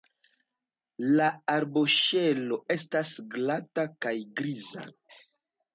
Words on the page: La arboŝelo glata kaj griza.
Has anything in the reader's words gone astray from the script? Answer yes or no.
yes